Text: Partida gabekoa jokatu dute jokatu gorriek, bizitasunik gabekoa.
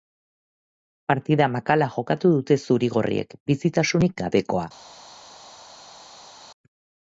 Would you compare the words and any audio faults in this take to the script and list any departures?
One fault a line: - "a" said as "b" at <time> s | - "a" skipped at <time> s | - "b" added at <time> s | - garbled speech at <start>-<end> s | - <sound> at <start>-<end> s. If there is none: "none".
- "gabekoa" said as "makala" at 1.6 s
- "jokatu" said as "zuri" at 2.7 s